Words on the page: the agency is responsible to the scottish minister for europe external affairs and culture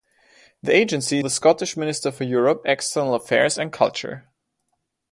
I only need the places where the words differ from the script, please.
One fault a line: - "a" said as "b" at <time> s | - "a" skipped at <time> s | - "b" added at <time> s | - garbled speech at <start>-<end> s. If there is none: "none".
- "is responsible to" skipped at 1.2 s